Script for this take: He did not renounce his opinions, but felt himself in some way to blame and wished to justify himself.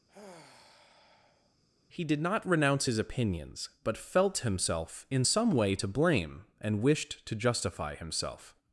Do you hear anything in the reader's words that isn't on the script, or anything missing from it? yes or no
no